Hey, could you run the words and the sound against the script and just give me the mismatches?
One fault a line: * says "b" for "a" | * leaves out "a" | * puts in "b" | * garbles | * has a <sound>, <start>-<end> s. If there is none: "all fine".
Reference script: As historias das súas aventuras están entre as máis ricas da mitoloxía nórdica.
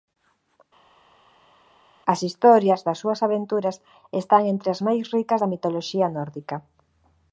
all fine